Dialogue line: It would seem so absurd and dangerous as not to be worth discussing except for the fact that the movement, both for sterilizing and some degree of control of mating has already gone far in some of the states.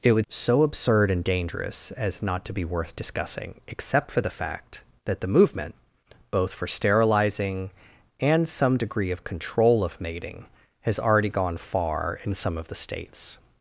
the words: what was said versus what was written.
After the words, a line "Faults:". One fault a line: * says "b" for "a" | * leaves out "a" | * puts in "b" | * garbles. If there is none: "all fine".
It would so absurd and dangerous as not to be worth discussing except for the fact that the movement, both for sterilizing and some degree of control of mating has already gone far in some of the states.
Faults:
* leaves out "seem"